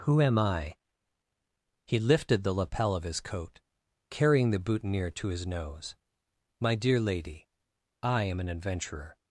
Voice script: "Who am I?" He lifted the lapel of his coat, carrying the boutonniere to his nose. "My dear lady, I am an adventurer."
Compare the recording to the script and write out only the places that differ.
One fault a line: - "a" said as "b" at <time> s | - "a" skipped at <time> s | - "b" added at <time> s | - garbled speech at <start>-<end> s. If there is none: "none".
none